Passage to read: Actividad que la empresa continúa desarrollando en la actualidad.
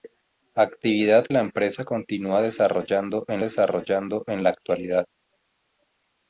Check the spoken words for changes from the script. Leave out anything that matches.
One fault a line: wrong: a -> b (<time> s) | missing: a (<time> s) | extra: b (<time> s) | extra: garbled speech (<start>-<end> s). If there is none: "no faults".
missing: que (1.3 s)
extra: desarrollando en (3.4 s)